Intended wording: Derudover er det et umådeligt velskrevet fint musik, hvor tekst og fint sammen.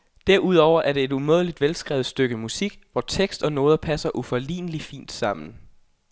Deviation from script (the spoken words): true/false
true